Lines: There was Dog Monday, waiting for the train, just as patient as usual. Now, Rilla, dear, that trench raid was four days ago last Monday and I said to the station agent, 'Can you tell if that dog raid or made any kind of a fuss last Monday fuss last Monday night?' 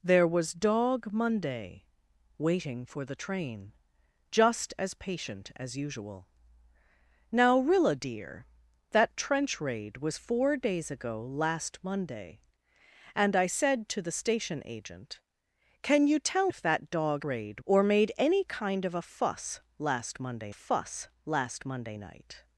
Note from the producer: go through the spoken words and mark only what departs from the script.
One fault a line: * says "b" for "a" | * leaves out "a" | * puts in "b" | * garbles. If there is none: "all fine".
all fine